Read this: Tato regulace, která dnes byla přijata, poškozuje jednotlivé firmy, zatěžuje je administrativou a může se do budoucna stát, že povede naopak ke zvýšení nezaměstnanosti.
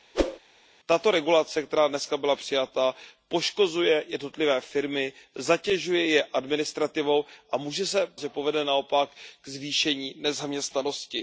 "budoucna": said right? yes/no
no